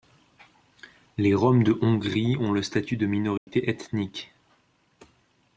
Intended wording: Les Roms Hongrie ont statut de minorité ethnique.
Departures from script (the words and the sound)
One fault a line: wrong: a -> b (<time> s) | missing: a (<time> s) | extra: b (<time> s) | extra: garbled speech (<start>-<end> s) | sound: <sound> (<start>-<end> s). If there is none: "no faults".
extra: de (1.6 s)
extra: le (2.5 s)
sound: dropout (3.4-3.5 s)